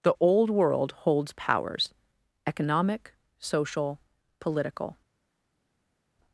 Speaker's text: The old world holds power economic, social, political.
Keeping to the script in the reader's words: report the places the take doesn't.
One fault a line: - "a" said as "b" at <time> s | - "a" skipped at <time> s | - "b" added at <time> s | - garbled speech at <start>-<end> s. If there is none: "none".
- "power" said as "powers" at 1.3 s